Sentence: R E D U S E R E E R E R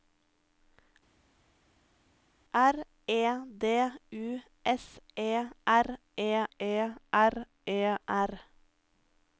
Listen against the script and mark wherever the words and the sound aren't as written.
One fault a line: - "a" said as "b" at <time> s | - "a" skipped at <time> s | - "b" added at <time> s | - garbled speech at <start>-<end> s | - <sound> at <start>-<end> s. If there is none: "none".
none